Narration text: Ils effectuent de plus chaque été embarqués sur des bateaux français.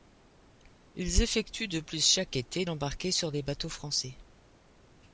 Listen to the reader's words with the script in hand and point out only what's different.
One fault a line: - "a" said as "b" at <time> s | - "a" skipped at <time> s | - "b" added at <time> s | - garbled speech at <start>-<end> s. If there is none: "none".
none